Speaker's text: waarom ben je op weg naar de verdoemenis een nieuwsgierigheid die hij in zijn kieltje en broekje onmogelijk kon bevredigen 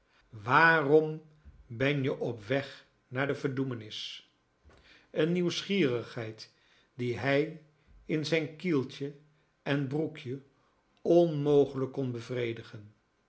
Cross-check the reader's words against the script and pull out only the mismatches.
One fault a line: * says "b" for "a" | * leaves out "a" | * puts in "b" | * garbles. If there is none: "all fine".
all fine